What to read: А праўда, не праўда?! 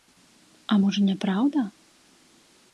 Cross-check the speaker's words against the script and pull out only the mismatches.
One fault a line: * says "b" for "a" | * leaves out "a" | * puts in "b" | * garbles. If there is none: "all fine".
* says "можа" for "праўда"